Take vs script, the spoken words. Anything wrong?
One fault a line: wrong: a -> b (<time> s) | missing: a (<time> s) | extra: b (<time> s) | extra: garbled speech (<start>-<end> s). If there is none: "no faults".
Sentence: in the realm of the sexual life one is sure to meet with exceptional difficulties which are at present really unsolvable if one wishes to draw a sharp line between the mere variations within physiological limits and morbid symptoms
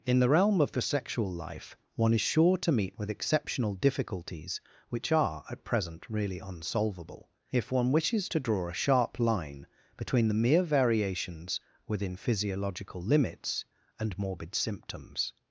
no faults